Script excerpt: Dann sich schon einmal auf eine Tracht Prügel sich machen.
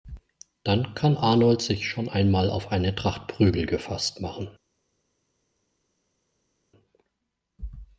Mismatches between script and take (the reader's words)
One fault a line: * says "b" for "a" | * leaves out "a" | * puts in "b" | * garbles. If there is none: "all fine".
* puts in "kann Arnold"
* says "gefasst" for "sich"